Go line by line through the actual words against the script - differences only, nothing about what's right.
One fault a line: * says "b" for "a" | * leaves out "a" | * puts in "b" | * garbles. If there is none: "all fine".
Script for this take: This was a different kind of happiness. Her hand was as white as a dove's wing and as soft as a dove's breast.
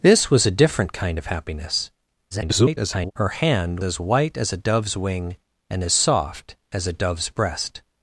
* garbles
* leaves out "was"